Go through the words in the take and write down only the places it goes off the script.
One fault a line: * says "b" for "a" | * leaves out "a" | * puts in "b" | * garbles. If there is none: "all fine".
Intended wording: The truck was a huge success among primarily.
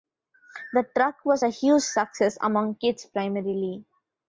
* puts in "kids"